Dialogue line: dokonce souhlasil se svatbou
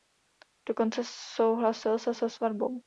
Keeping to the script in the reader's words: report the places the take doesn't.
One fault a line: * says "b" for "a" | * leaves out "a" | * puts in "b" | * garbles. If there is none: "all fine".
* puts in "se"